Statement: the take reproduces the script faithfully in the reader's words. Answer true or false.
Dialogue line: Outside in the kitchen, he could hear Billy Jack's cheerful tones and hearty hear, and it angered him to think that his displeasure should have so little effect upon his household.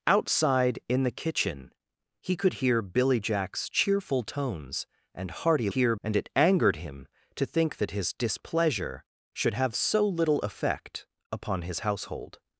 true